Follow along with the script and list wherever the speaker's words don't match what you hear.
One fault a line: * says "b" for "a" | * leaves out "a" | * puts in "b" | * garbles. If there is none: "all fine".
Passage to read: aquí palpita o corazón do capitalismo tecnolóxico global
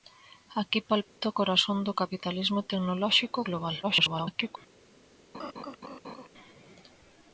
* garbles